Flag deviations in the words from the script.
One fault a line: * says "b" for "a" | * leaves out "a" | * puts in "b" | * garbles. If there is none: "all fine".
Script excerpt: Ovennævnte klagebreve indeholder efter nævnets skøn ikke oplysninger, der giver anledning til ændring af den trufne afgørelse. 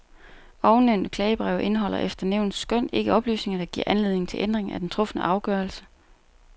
all fine